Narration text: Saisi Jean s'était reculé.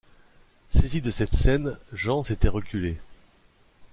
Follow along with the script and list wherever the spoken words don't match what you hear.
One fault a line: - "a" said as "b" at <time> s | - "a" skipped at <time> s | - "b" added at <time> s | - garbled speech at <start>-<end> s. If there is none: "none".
- "de cette scène" added at 1.0 s